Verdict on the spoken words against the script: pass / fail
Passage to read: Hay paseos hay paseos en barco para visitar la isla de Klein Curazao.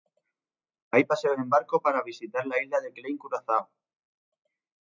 fail